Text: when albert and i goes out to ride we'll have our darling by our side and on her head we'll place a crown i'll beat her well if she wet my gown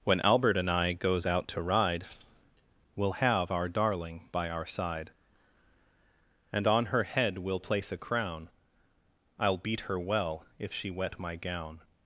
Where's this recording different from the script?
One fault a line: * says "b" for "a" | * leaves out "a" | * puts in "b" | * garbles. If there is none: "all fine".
all fine